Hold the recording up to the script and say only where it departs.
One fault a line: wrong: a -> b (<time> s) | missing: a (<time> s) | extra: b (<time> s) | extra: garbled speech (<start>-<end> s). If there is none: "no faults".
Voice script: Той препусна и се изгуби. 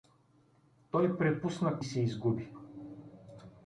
no faults